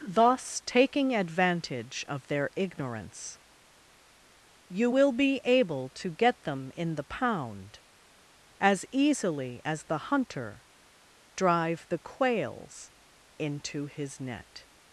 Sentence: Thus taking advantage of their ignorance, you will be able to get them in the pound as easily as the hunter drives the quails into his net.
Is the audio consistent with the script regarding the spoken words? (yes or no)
no